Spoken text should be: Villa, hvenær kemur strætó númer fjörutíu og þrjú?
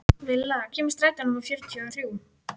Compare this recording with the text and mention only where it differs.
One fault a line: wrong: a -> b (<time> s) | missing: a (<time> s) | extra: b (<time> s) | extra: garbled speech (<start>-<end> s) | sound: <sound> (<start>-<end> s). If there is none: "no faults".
missing: hvenær (0.6 s)
missing: og (1.9 s)